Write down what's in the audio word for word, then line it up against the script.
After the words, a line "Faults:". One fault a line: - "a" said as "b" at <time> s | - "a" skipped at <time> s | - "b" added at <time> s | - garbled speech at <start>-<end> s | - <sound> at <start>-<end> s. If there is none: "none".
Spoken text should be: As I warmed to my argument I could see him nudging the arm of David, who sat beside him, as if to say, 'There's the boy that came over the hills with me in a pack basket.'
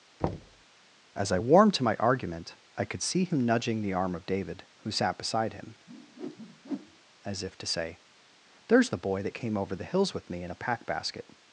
As I warmed to my argument I could see him nudging the arm of David, who sat beside him, as if to say, 'There's the boy that came over the hills with me in a pack basket.'
Faults:
- thud at 0.2-0.6 s
- whoosh at 5.9-7.0 s